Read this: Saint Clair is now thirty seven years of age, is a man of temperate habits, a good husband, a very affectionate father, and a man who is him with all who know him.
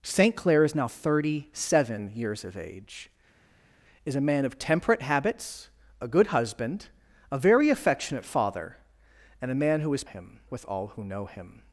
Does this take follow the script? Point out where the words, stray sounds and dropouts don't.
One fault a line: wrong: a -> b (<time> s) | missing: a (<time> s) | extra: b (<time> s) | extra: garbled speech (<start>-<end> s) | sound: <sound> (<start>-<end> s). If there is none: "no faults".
no faults